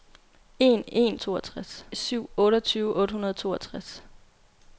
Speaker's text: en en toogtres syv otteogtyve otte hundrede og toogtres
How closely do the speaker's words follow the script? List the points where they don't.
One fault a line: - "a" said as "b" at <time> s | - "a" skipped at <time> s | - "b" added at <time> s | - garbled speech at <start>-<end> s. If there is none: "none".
none